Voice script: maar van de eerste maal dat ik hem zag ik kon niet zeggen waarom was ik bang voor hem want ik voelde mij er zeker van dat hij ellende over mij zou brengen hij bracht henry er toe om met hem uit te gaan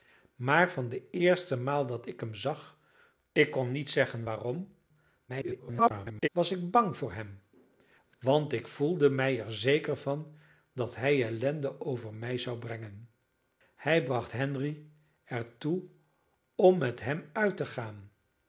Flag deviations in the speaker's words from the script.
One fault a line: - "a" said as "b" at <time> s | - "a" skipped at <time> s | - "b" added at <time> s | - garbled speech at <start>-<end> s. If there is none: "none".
- garbled speech at 5.3-6.3 s